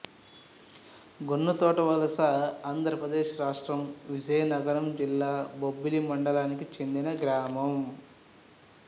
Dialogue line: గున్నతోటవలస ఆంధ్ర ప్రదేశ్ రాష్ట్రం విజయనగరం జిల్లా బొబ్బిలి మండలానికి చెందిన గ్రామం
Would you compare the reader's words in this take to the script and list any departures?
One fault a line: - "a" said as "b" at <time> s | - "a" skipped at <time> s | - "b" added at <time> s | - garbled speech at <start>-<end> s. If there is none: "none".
none